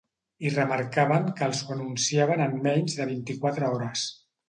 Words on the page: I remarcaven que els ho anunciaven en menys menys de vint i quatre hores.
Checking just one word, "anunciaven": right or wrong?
right